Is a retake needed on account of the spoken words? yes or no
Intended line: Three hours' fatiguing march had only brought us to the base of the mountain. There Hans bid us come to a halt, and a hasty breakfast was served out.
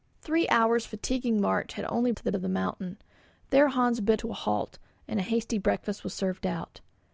yes